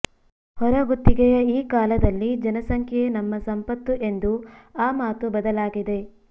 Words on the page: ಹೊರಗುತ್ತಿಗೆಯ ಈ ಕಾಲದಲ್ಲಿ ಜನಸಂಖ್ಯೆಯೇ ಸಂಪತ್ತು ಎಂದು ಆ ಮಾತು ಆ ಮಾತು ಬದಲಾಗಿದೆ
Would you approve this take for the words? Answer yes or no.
no